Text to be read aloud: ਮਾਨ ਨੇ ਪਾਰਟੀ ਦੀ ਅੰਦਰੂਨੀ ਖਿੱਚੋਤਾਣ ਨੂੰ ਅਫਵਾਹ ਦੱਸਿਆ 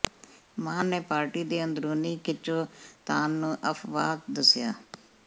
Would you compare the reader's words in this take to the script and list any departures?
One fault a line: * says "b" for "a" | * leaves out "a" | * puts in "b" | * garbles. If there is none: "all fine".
all fine